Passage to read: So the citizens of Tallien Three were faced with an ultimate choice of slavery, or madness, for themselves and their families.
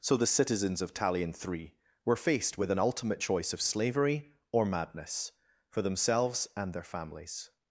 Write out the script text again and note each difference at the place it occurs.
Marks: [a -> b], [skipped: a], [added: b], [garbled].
So the citizens of Tallien Three were faced with an ultimate choice of slavery, or madness, for themselves and their families.